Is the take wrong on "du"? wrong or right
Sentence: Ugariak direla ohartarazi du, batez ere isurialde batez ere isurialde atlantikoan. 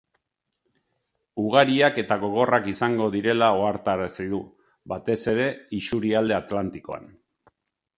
right